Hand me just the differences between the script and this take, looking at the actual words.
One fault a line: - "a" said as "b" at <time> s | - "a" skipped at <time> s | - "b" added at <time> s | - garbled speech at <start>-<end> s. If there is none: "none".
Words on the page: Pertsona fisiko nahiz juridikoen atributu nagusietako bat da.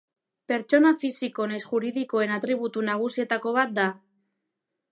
none